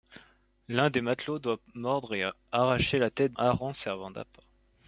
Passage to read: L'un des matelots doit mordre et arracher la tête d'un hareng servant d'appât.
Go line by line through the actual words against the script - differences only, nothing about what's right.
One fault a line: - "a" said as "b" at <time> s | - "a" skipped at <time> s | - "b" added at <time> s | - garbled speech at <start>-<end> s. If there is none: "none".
- "d'un" skipped at 3.4 s